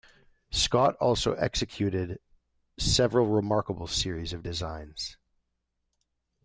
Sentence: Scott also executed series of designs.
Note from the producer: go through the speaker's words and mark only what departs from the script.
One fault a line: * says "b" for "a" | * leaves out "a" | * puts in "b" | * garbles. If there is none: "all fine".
* puts in "several remarkable"